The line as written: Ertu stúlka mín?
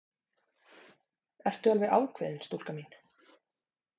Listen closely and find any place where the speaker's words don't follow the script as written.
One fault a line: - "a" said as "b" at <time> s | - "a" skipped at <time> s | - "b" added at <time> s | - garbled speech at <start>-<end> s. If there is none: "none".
- "alveg ákveðin" added at 1.7 s